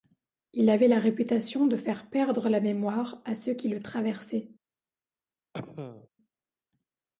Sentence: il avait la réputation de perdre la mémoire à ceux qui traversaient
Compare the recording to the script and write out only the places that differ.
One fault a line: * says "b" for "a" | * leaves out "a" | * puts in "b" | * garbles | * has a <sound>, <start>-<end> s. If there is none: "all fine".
* puts in "faire"
* puts in "le"
* has a cough, 5.5-6.1 s